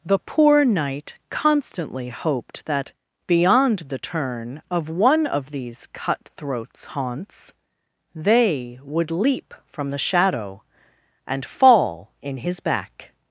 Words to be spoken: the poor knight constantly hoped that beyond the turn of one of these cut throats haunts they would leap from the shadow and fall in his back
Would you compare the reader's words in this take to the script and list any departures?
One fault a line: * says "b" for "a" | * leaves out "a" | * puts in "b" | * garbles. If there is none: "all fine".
all fine